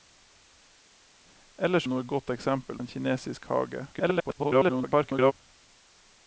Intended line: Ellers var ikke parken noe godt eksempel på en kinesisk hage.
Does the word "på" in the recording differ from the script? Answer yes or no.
yes